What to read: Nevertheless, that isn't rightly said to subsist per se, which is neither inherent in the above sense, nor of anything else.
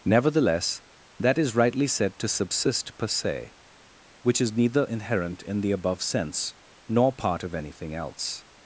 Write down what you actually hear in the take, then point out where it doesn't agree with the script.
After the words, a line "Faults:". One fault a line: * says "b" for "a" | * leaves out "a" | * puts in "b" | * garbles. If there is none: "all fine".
Nevertheless, that is rightly said to subsist per se, which is neither inherent in the above sense, nor part of anything else.
Faults:
* says "is" for "isn't"
* puts in "part"